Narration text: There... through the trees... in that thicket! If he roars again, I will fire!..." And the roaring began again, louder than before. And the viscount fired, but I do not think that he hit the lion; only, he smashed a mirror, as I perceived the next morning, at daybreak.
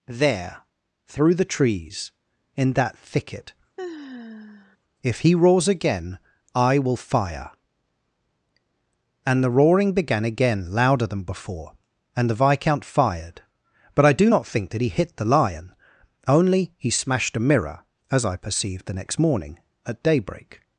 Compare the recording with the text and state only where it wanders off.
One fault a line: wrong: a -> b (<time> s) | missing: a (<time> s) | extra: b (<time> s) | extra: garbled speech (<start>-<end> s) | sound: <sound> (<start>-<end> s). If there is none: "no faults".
sound: sigh (3.8-4.8 s)